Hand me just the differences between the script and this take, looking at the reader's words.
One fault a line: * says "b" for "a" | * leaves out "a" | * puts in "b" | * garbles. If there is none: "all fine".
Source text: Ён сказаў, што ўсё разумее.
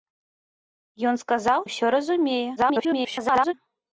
* leaves out "што"
* garbles